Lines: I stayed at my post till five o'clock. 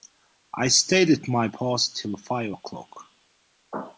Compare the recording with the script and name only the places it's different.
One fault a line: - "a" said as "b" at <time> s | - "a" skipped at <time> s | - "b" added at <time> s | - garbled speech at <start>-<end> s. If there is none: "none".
none